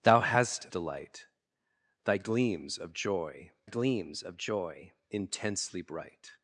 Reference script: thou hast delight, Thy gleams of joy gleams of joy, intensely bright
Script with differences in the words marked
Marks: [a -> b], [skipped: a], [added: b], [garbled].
thou hast delight, Thy gleams of joy gleams of joy, intensely bright